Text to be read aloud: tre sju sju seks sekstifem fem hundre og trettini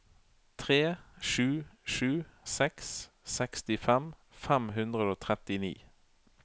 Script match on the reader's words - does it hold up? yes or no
yes